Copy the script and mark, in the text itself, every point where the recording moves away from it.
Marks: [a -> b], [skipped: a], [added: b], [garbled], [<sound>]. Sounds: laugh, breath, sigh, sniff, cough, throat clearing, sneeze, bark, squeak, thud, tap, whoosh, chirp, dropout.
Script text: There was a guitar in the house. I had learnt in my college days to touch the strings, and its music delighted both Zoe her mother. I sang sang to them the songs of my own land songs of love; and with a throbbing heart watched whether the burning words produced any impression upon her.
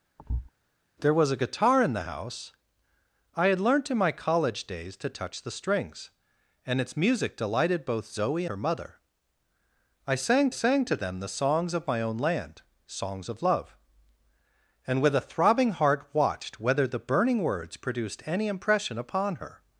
[thud] There was a guitar in the house. I had learnt in my college days to touch the strings, and its music delighted both Zoe her mother. I sang sang to them the songs of my own land songs of love; and with a throbbing heart watched whether the burning words produced any impression upon her.